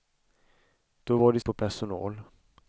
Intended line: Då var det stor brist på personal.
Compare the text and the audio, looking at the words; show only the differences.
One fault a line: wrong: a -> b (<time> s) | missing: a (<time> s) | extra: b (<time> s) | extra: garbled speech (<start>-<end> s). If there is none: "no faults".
missing: stor brist (1.4 s)